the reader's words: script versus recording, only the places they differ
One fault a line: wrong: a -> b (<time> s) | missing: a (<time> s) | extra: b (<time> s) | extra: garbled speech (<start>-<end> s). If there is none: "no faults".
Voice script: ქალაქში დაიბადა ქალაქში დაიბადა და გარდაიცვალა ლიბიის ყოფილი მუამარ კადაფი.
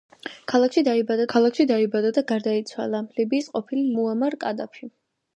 no faults